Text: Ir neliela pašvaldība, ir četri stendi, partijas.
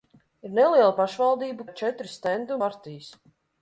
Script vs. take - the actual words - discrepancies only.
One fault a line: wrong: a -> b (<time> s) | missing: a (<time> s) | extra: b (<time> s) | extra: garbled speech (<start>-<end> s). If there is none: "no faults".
no faults